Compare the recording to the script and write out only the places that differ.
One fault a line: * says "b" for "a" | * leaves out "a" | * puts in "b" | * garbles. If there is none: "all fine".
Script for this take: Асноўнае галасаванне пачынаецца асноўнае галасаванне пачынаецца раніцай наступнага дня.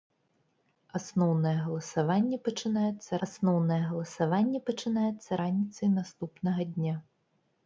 all fine